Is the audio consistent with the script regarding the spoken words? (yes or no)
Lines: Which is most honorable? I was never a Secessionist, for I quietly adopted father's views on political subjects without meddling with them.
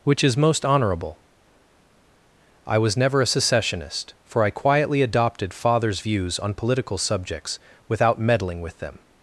yes